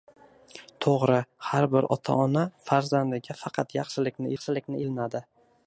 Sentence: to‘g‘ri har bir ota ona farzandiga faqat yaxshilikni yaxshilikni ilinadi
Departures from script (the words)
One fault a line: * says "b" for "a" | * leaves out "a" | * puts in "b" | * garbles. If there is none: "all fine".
all fine